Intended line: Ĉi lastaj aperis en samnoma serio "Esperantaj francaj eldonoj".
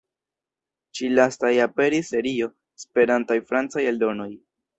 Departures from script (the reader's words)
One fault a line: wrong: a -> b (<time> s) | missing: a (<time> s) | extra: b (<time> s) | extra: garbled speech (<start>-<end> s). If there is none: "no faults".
missing: en samnoma (2.1 s)